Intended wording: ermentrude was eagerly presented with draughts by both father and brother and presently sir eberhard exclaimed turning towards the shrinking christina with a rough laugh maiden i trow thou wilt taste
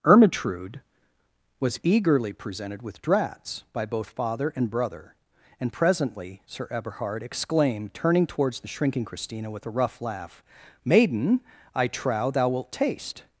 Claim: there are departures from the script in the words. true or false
false